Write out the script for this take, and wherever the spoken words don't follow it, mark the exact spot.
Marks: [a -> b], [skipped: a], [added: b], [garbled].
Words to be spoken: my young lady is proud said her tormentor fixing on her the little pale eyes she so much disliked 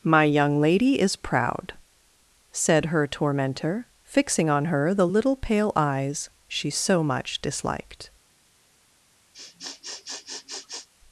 my young lady is proud said her tormentor fixing on her the little pale eyes she so much disliked